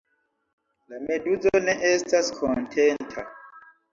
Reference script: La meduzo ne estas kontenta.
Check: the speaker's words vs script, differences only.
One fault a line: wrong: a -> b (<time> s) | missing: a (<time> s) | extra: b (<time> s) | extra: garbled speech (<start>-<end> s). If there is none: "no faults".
no faults